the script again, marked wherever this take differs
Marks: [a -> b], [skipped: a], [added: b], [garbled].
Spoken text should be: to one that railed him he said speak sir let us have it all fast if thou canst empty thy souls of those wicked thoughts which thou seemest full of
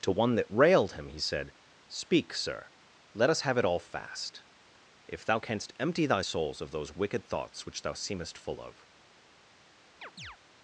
to one that railed him he said speak sir let us have it all fast if thou canst empty thy souls of those wicked thoughts which thou seemest full of